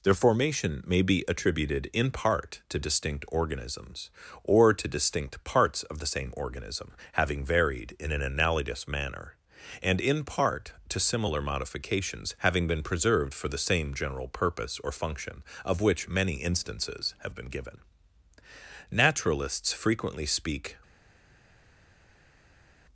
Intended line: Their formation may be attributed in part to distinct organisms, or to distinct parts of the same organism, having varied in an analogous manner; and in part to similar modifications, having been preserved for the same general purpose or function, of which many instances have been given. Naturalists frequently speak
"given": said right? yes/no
yes